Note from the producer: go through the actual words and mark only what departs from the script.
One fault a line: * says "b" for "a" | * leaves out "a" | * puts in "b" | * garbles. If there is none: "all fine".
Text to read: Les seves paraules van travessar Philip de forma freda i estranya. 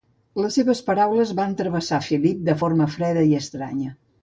all fine